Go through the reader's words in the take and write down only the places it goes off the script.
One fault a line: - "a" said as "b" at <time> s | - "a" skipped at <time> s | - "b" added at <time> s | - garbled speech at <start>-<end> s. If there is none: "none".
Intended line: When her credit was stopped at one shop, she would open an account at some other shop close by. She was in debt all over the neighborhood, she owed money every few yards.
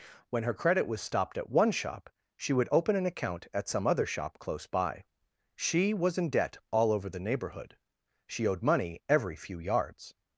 none